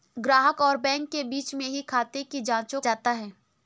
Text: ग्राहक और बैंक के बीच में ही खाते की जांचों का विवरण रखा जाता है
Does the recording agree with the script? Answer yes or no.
no